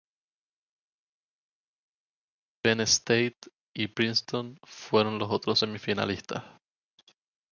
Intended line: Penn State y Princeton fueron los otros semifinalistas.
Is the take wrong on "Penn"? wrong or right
right